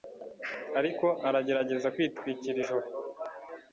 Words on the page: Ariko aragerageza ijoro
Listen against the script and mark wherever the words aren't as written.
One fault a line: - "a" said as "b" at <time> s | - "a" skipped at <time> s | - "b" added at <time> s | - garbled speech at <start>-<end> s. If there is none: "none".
- "kwitwikira" added at 1.9 s